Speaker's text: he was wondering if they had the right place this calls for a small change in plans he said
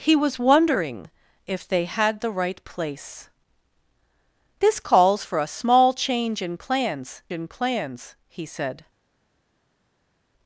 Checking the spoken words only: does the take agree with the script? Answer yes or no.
no